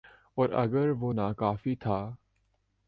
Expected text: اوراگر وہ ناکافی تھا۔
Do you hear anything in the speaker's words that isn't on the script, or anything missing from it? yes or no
no